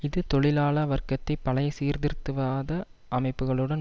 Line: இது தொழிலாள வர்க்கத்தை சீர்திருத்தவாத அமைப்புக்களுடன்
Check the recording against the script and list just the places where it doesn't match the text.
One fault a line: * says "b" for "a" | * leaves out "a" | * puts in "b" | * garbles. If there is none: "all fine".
* puts in "பழைய"